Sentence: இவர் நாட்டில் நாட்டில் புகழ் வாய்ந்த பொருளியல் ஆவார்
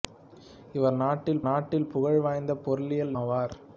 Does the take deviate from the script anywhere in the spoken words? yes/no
no